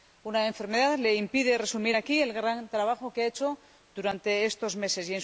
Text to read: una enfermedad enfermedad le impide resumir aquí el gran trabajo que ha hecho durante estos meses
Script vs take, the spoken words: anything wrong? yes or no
yes